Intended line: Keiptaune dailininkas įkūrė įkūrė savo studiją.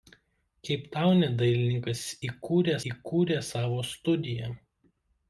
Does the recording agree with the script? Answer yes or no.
yes